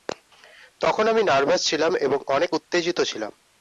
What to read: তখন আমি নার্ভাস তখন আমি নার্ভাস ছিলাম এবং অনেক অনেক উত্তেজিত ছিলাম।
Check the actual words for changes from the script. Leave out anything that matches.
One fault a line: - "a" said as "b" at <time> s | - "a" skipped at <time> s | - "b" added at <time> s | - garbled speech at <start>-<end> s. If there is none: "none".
- "তখন আমি নার্ভাস" skipped at 1.6 s
- "অনেক" skipped at 2.5 s